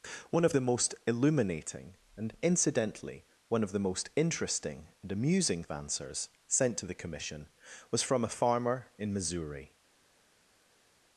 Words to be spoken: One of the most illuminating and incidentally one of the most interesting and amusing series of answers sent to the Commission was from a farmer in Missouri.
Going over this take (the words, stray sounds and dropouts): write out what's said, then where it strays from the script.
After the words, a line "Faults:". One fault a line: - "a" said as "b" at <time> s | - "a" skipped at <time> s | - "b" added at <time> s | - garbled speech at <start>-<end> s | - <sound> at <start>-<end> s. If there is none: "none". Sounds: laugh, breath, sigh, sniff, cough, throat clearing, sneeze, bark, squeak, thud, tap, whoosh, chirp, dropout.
One of the most illuminating and incidentally one of the most interesting and amusing of answers sent to the Commission was from a farmer in Missouri.
Faults:
- "series" skipped at 5.7 s